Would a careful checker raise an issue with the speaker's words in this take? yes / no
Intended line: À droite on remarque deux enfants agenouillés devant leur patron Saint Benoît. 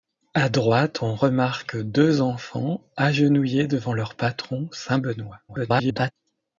yes